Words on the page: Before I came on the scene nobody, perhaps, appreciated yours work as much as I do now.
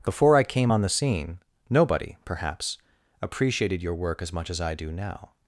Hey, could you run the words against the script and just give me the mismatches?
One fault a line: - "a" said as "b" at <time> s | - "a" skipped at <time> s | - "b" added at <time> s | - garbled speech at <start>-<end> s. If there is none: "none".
- "yours" said as "your" at 3.8 s